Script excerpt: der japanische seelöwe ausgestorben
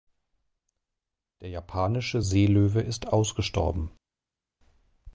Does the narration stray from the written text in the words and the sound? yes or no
yes